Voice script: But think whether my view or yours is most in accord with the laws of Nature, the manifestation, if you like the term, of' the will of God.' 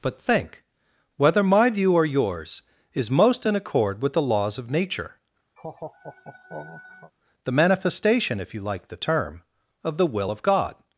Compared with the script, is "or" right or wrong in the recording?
right